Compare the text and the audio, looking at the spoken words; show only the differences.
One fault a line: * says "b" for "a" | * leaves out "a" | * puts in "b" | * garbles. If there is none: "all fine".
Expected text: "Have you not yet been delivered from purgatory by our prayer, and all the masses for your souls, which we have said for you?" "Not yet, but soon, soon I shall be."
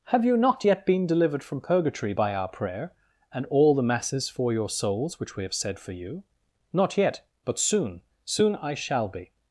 all fine